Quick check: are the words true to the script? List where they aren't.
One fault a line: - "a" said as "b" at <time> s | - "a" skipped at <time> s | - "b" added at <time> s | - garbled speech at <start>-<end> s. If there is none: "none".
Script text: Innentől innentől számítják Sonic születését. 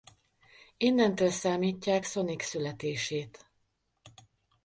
- "innentől" skipped at 1.3 s